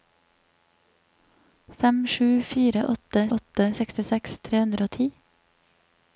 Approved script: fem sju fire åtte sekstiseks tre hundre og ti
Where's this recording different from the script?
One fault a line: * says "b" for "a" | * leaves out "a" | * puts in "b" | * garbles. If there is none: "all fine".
* puts in "åtte"